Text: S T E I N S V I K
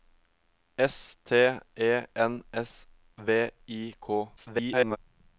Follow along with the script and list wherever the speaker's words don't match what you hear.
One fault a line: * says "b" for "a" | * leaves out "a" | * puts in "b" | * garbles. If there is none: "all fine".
* leaves out "I"
* garbles